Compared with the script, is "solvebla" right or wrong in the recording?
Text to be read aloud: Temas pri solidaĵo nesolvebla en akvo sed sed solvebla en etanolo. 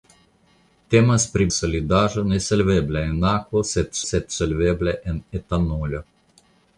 right